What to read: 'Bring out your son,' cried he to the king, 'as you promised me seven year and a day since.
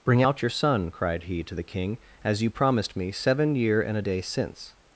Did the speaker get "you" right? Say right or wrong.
right